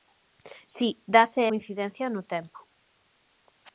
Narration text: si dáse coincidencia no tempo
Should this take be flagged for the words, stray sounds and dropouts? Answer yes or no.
no